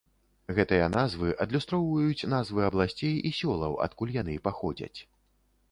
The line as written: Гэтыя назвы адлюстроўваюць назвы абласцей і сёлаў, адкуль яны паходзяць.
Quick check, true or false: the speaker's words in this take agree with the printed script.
true